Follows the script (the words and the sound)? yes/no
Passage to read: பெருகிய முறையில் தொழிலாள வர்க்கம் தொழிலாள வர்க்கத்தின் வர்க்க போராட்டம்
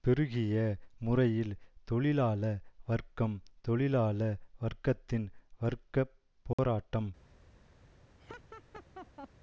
no